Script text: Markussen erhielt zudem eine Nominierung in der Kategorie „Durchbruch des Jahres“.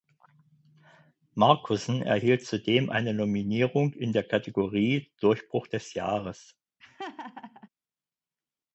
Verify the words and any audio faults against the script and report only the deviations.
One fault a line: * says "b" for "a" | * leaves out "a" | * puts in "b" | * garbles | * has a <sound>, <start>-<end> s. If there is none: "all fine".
* has a laugh, 6.8-7.7 s